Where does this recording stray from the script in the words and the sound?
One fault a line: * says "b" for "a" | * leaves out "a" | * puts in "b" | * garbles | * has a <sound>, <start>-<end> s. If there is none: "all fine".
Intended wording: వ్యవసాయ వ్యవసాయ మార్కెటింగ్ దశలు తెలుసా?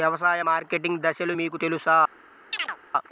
* leaves out "వ్యవసాయ"
* puts in "మీకు"
* has a chirp, 2.5-2.8 s